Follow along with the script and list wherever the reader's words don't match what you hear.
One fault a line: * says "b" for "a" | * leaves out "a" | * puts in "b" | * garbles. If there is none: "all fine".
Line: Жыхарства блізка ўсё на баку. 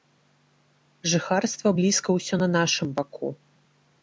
* puts in "нашым"